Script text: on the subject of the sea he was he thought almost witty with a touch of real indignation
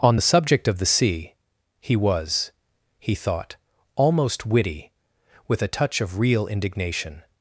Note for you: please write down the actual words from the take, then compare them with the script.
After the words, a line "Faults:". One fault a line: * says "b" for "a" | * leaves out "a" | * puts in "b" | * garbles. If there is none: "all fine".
on the subject of the sea he was he thought almost witty with a touch of real indignation
Faults:
all fine